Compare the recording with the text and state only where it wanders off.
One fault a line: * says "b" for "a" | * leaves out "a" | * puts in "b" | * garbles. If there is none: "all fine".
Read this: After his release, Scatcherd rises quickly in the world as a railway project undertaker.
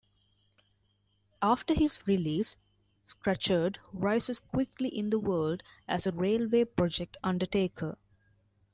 all fine